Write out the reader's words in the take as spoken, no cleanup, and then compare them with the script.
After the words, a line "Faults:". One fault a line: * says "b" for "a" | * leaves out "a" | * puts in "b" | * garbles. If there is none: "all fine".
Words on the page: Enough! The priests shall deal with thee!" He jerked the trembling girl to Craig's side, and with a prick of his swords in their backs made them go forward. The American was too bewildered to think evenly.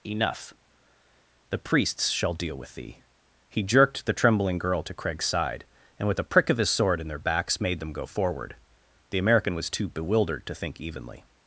Enough! The priests shall deal with thee!" He jerked the trembling girl to Craig's side, and with a prick of his sword in their backs made them go forward. The American was too bewildered to think evenly.
Faults:
* says "sword" for "swords"